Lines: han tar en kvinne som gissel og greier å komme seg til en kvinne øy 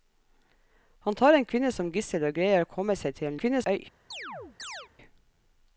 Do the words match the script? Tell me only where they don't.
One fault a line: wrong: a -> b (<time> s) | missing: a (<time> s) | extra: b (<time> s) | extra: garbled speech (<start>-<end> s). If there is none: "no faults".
no faults